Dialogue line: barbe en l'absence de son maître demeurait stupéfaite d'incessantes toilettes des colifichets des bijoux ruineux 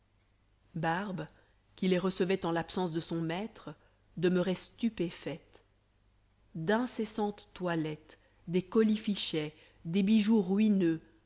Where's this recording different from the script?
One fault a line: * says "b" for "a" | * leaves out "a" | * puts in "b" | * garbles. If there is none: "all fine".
* puts in "qui les recevait"